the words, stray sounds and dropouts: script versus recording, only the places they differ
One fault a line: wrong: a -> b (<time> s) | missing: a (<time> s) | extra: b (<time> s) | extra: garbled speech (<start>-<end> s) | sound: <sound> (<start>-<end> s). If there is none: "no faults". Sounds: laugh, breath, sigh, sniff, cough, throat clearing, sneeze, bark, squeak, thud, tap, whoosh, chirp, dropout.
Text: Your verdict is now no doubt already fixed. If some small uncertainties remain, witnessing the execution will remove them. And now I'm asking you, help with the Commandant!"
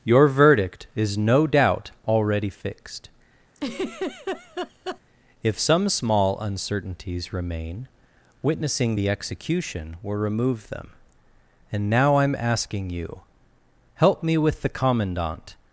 missing: now (1.1 s)
sound: laugh (3.6-5.0 s)
extra: me (14.2 s)